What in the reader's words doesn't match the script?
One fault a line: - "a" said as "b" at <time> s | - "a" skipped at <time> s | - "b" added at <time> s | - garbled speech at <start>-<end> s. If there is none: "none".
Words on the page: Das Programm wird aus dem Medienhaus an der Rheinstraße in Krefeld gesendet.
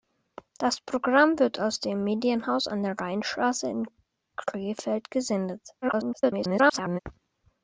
- garbled speech at 5.8-7.0 s